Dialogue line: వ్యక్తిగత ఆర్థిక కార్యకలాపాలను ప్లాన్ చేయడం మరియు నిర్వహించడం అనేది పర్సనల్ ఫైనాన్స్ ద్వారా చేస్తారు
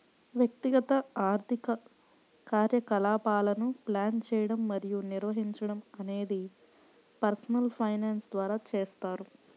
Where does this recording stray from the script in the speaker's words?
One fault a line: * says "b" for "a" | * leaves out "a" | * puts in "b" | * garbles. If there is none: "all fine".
all fine